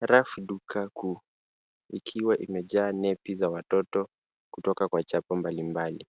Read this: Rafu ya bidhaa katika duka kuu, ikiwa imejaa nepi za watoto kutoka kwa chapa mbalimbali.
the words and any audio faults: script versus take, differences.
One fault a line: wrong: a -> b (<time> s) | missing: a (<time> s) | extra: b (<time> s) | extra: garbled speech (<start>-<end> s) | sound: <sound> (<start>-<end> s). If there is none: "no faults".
missing: ya bidhaa katika (0.4 s)